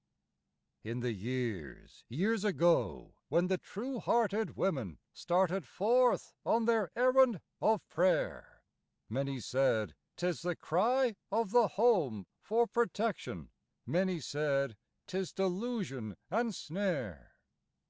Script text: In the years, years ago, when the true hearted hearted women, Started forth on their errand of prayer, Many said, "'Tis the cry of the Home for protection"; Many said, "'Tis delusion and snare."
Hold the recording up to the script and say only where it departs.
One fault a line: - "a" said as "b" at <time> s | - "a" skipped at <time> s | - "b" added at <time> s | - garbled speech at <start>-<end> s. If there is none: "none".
- "hearted" skipped at 4.5 s